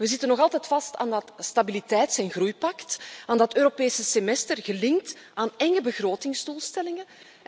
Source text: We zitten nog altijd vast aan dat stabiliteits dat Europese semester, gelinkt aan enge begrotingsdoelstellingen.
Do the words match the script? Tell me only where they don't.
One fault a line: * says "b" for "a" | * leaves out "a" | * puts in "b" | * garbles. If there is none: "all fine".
* puts in "en groeipact aan"